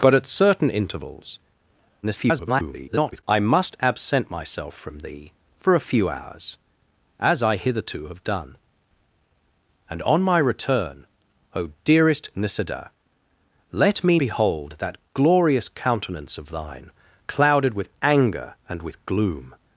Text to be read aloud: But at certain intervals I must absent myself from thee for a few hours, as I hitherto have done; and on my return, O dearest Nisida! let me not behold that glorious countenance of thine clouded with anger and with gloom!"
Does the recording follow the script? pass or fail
fail